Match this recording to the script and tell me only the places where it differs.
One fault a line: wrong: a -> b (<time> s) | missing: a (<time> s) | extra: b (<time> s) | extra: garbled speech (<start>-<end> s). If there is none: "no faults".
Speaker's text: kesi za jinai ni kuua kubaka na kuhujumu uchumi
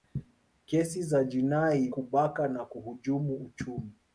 missing: ni kuua (1.9 s)